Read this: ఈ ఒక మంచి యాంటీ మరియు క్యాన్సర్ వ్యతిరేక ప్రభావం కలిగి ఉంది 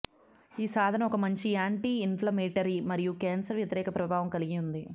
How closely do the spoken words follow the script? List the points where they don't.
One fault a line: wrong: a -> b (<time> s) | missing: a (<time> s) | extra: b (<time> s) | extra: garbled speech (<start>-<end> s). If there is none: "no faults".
extra: సాధనం (0.7 s)
extra: ఇన్ఫ్లమేటరీ (2.1 s)